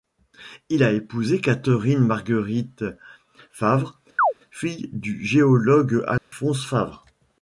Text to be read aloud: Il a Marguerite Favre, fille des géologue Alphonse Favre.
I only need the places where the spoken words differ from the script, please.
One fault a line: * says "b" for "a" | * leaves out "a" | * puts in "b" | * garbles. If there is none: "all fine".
* puts in "épousé Catherine"
* says "du" for "des"